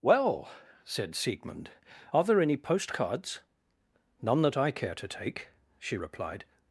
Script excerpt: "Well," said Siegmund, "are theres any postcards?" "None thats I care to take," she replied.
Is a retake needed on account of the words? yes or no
yes